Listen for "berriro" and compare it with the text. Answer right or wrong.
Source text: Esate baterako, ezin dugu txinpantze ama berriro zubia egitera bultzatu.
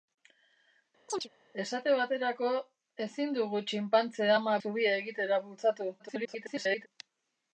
wrong